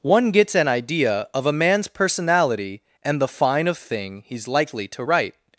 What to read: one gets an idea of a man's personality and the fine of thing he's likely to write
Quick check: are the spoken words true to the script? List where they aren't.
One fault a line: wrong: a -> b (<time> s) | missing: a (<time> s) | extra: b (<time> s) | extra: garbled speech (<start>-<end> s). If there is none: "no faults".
no faults